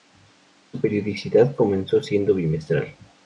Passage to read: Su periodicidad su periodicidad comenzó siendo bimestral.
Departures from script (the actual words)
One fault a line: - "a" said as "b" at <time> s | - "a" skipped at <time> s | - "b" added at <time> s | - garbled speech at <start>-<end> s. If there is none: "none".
- "su periodicidad" skipped at 1.6 s